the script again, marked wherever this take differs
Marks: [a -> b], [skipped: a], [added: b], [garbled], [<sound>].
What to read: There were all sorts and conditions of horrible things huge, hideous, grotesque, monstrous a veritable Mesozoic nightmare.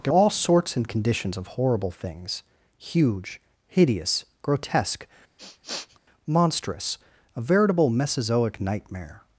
There [skipped: were] all sorts and conditions of horrible things huge, hideous, grotesque, [sniff] monstrous a veritable Mesozoic nightmare.